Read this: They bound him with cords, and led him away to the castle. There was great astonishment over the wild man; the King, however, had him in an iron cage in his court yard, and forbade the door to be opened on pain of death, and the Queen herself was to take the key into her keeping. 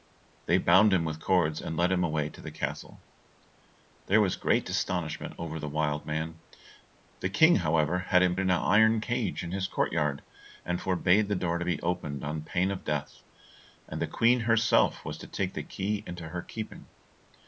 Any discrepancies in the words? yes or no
no